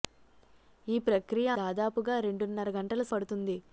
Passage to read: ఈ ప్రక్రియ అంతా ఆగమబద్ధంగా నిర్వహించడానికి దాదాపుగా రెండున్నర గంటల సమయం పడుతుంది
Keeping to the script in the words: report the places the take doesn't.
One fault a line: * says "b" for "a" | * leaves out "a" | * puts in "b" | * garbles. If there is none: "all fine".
* leaves out "అంతా ఆగమబద్ధంగా నిర్వహించడానికి"
* leaves out "సమయం"